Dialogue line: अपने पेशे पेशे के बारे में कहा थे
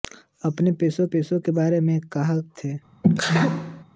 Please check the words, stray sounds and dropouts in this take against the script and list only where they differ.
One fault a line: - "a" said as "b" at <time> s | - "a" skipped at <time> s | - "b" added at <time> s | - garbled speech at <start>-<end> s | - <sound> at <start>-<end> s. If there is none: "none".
- sneeze at 3.0-3.8 s